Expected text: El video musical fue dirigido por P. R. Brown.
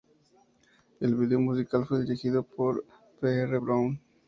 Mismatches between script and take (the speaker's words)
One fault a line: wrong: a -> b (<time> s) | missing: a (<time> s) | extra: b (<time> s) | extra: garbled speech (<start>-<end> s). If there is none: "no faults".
no faults